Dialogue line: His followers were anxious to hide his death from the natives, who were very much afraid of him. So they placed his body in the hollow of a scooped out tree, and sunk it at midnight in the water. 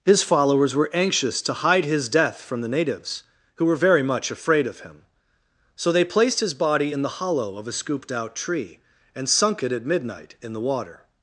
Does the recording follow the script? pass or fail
pass